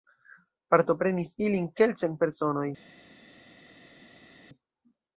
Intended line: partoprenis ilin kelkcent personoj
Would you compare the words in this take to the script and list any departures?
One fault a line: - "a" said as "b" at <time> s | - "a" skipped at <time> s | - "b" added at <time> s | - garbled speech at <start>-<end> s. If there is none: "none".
none